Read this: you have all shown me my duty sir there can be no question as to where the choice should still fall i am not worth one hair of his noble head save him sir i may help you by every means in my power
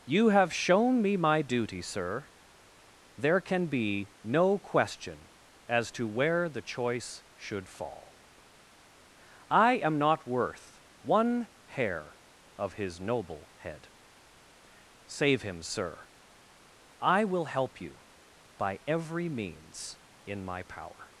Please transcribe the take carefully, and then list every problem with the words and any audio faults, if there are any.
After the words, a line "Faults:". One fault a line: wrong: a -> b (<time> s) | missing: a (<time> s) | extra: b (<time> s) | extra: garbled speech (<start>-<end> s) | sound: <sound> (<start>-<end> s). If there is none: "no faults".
you have shown me my duty sir there can be no question as to where the choice should fall i am not worth one hair of his noble head save him sir i will help you by every means in my power
Faults:
missing: all (0.5 s)
missing: still (7.7 s)
wrong: may -> will (17.2 s)